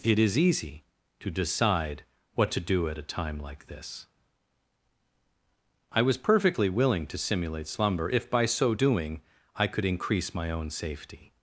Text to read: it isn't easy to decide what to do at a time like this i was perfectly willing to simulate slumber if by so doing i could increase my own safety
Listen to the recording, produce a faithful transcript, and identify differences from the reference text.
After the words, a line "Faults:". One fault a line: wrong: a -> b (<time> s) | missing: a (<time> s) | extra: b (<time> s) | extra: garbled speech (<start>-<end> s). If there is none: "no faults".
it is easy to decide what to do at a time like this i was perfectly willing to simulate slumber if by so doing i could increase my own safety
Faults:
wrong: isn't -> is (0.2 s)